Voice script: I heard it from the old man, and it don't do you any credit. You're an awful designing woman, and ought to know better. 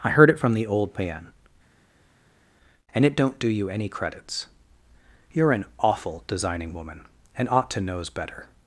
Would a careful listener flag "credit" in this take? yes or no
yes